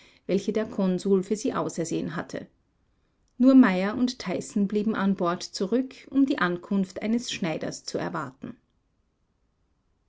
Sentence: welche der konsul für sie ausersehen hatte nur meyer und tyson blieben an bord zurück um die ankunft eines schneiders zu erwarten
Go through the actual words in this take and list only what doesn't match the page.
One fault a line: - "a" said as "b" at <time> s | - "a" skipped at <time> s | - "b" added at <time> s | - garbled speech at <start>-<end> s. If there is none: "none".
none